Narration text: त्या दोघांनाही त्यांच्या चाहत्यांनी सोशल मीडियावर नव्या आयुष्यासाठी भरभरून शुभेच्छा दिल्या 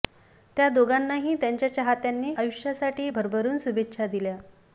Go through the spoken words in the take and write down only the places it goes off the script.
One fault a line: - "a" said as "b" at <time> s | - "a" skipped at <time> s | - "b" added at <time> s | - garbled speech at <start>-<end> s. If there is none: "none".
- "सोशल मीडियावर नव्या" skipped at 2.4 s